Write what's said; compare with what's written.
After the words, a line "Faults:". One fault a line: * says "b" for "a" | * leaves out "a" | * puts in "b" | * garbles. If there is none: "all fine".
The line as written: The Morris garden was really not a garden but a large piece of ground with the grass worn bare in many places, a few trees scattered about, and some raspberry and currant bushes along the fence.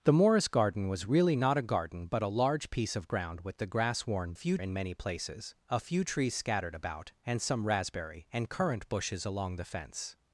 The Morris garden was really not a garden but a large piece of ground with the grass worn few in many places, a few trees scattered about, and some raspberry and currant bushes along the fence.
Faults:
* says "few" for "bare"